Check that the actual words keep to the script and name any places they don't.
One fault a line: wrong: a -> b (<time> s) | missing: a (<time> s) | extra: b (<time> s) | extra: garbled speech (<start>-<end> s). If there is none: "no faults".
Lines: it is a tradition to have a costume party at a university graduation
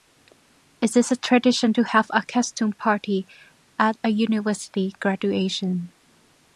no faults